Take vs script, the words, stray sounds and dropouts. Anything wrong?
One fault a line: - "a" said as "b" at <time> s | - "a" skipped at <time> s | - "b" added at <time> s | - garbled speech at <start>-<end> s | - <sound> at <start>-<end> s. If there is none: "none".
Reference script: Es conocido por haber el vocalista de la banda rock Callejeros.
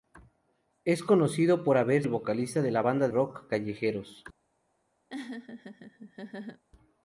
- laugh at 5.1-6.6 s